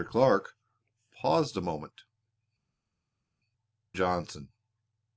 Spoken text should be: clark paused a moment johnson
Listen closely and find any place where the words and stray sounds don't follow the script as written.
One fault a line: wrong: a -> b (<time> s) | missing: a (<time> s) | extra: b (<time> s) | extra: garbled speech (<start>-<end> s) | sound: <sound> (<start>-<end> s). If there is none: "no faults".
no faults